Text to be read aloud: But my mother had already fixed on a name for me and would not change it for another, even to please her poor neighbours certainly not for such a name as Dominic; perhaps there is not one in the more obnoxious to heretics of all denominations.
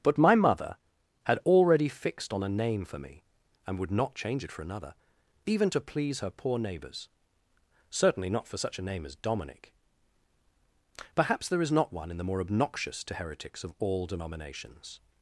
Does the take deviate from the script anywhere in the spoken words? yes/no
no